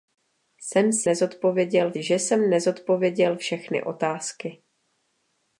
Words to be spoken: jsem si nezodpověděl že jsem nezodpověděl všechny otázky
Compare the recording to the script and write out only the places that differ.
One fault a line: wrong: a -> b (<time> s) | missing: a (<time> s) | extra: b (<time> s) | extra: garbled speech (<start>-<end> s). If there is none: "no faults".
no faults